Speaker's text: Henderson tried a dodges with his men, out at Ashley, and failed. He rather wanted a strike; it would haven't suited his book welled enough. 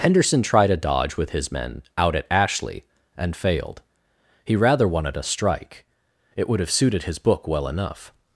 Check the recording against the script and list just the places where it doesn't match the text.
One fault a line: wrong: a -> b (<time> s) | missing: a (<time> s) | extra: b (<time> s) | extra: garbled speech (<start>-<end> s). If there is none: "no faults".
wrong: dodges -> dodge (0.8 s)
wrong: haven't -> have (6.6 s)
wrong: welled -> well (7.5 s)